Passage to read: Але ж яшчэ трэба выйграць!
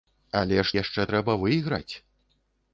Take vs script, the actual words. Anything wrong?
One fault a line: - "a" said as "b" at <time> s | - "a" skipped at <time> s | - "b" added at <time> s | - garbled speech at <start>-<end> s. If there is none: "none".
none